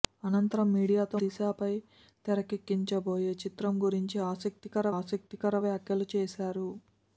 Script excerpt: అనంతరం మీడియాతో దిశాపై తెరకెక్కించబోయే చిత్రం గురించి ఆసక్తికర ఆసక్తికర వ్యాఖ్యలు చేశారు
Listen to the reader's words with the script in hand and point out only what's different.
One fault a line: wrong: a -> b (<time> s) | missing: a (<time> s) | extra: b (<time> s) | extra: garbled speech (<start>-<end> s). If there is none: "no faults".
no faults